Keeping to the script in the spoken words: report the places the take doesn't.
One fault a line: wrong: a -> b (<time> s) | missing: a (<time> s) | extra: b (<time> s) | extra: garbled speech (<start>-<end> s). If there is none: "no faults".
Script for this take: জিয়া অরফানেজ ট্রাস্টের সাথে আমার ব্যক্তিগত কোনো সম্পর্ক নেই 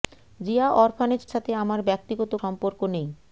missing: ট্রাস্টের (1.2 s)
missing: কোনো (2.3 s)